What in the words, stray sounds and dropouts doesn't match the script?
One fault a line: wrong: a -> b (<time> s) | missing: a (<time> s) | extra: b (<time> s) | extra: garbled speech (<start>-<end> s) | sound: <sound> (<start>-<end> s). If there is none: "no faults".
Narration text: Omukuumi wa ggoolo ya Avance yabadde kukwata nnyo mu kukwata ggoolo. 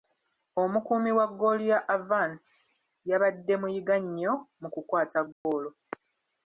wrong: kukwata -> muyiga (3.6 s)
sound: dropout (5.3-5.5 s)